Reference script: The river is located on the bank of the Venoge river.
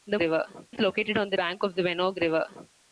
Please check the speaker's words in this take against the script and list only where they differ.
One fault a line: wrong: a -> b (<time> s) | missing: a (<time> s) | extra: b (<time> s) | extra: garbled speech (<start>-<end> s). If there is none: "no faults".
no faults